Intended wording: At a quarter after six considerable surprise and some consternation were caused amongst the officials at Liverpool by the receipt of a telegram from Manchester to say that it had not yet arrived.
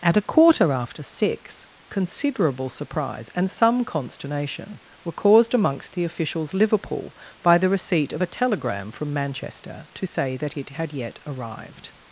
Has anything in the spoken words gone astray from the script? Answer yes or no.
yes